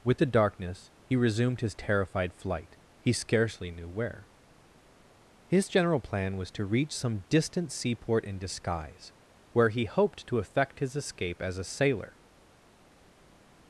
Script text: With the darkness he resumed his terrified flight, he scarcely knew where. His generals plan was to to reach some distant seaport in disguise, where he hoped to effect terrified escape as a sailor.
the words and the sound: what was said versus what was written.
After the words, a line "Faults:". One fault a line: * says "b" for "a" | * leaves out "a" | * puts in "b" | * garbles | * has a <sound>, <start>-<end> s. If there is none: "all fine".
With the darkness he resumed his terrified flight, he scarcely knew where. His general plan was to reach some distant seaport in disguise, where he hoped to effect his escape as a sailor.
Faults:
* says "general" for "generals"
* leaves out "to"
* says "his" for "terrified"